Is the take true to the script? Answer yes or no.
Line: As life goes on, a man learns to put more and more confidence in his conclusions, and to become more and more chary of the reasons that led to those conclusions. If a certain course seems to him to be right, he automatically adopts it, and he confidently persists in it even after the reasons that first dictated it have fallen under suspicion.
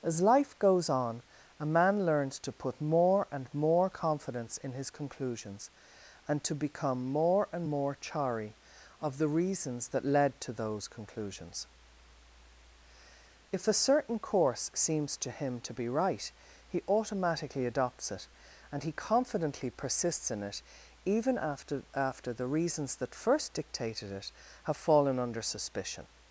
no